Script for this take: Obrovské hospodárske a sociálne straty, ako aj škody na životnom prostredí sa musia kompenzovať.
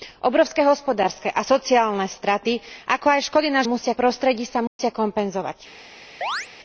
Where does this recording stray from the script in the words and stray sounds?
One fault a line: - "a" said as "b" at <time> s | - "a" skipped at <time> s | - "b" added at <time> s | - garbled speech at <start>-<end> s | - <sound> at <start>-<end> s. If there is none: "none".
- "životnom" said as "musia" at 3.7 s
- dropout at 4.7-4.8 s
- chirp at 6.2-6.5 s